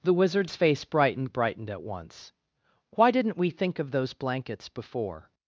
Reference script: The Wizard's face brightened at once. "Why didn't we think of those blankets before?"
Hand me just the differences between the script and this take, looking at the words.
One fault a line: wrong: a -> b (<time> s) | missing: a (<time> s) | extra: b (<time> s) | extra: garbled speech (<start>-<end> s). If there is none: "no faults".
extra: brightened (1.3 s)